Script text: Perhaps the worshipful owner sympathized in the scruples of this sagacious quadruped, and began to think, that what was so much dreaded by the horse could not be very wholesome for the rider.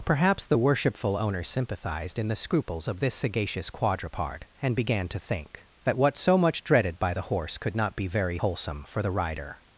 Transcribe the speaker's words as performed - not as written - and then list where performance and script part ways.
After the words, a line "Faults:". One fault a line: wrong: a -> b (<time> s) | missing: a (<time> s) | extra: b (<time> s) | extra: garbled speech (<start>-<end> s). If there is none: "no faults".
Perhaps the worshipful owner sympathized in the scruples of this sagacious quadruped, and began to think, that what so much dreaded by the horse could not be very wholesome for the rider.
Faults:
missing: was (6.2 s)